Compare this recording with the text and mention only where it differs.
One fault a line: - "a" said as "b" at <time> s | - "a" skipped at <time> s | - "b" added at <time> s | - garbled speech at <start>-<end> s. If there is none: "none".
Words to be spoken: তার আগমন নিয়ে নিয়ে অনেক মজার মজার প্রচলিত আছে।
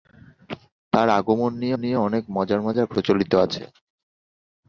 none